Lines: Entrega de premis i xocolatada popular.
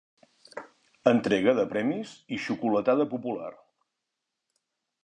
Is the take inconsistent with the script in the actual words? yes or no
no